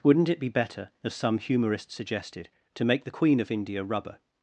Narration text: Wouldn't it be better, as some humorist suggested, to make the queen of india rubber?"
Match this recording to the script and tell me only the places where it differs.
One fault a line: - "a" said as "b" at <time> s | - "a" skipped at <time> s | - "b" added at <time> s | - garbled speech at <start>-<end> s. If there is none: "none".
none